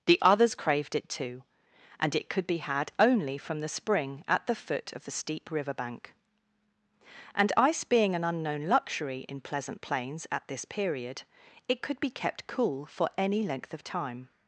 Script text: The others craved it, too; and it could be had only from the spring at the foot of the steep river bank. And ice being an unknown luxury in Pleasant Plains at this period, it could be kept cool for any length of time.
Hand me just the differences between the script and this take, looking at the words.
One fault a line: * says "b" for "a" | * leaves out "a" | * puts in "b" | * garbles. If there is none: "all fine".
all fine